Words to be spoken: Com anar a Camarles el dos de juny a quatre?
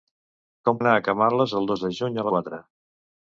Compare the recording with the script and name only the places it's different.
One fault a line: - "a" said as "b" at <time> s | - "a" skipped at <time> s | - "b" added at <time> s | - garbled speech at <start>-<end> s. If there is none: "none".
none